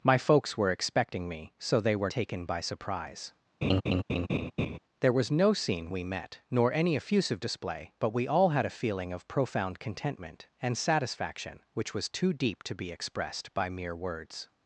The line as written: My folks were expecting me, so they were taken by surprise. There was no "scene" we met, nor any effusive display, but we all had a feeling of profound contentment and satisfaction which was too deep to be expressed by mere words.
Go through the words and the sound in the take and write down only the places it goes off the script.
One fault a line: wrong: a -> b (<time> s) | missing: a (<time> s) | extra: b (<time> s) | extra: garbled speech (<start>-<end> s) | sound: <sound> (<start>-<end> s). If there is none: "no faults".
sound: laugh (3.6-4.8 s)